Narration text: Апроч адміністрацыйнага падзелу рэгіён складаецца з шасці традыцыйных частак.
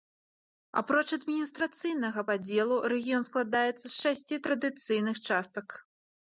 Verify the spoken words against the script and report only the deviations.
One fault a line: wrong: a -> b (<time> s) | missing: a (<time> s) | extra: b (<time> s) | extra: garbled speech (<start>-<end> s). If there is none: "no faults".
no faults